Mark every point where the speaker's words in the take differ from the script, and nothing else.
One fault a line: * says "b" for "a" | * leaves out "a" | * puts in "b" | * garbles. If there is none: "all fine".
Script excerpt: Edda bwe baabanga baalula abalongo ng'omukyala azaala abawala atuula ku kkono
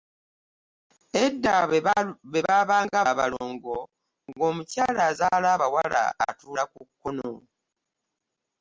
* leaves out "baalula"